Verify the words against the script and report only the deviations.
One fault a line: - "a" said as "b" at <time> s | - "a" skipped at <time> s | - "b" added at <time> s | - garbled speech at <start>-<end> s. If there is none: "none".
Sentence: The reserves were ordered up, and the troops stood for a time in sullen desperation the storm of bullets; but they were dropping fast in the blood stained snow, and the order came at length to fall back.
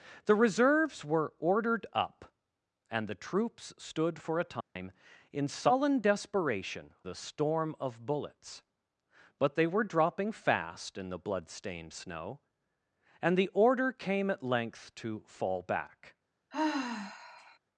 none